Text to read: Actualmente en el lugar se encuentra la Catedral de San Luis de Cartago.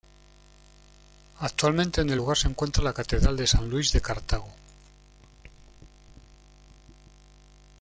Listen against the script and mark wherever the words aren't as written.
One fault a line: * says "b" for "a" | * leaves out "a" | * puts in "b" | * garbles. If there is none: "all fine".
all fine